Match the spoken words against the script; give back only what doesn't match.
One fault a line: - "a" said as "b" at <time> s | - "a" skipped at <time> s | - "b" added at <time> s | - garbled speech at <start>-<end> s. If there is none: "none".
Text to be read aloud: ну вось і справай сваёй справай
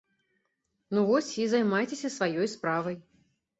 - "справай" said as "займайцеся" at 1.5 s